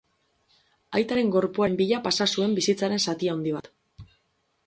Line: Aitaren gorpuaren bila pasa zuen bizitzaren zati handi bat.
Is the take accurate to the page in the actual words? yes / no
yes